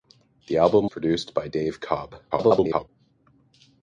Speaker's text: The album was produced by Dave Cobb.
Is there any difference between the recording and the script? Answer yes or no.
yes